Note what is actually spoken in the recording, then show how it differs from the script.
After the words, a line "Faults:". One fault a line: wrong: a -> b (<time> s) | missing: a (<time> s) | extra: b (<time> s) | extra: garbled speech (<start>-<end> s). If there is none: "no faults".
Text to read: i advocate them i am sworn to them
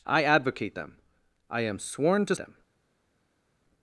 i advocate them i am sworn to them
Faults:
no faults